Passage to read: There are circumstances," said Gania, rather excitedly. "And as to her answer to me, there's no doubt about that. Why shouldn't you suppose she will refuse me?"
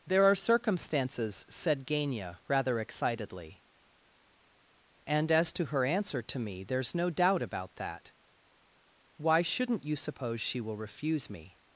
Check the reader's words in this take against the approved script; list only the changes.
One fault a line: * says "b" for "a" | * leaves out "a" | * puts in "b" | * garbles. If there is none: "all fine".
all fine